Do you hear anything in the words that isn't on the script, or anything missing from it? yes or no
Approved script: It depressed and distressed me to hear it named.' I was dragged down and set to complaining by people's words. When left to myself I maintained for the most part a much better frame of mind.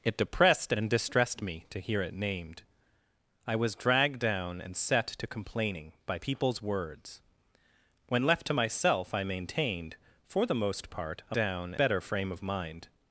yes